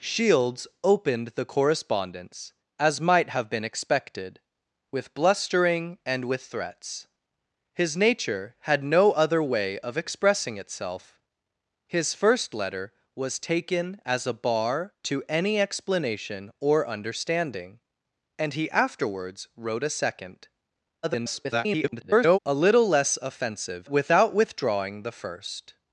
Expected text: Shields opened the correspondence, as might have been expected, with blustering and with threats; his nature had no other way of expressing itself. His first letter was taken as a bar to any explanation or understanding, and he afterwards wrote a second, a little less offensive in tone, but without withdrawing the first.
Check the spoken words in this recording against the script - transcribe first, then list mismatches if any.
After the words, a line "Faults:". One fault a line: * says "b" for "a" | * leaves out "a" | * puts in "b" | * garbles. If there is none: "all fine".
Shields opened the correspondence, as might have been expected, with blustering and with threats; his nature had no other way of expressing itself. His first letter was taken as a bar to any explanation or understanding, and he afterwards wrote a second, [garbled] a little less offensive without withdrawing the first.
Faults:
* garbles
* leaves out "in tone but"